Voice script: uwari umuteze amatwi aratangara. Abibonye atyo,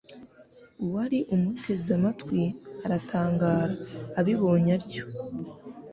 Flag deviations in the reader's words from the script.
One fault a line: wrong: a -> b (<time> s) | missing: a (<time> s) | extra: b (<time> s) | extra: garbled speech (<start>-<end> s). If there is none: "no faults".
no faults